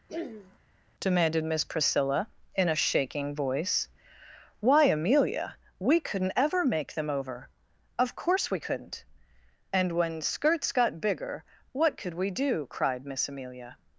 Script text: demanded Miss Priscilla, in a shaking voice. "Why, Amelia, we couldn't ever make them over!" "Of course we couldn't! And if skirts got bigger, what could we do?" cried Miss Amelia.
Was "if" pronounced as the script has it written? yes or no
no